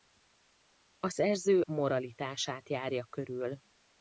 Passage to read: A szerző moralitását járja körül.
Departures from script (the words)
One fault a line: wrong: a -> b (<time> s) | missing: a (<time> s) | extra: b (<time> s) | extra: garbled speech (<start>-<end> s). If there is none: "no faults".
no faults